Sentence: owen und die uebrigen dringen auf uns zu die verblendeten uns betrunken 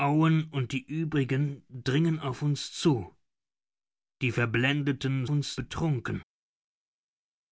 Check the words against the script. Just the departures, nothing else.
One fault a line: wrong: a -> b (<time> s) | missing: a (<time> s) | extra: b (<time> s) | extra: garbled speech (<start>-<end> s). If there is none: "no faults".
no faults